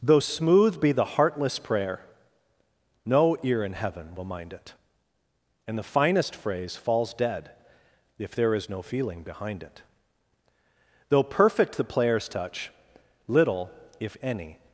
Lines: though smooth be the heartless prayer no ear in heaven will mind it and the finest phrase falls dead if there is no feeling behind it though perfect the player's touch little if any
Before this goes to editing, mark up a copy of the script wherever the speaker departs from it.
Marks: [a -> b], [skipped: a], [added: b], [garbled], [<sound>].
though smooth be the heartless prayer no ear in heaven will mind it and the finest phrase falls dead if there is no feeling behind it though perfect the player's touch little if any